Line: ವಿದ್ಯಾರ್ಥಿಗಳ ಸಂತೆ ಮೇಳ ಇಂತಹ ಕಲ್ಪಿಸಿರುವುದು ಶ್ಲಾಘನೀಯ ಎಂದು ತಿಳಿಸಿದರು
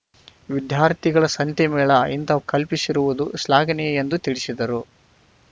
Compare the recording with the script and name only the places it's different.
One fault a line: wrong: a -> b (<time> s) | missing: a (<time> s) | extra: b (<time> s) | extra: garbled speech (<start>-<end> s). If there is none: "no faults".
no faults